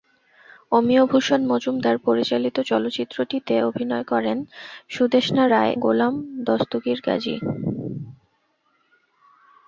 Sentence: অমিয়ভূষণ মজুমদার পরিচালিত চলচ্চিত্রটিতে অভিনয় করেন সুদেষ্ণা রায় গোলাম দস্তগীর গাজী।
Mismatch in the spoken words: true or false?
false